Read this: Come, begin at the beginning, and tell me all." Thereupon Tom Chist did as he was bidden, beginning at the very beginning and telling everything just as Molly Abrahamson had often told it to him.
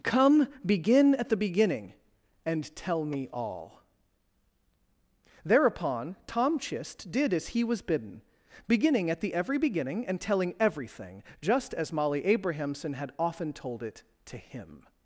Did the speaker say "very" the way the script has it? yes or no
no